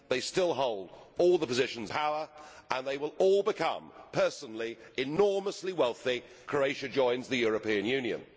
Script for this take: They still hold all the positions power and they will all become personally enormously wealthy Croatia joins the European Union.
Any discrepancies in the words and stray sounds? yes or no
no